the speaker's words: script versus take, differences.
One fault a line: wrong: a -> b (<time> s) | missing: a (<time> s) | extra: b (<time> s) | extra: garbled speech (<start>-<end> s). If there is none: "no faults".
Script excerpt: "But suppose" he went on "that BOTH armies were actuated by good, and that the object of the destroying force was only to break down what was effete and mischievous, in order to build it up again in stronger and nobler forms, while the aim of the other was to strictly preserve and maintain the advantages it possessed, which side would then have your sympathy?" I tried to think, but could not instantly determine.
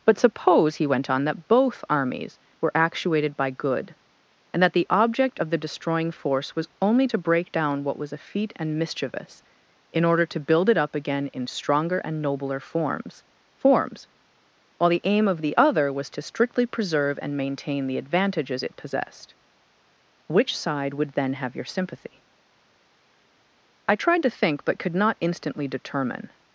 extra: forms (13.6 s)